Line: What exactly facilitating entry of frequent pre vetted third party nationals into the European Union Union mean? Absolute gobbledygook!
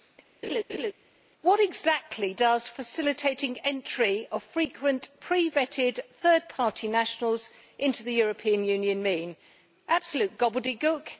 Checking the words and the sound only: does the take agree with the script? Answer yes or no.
no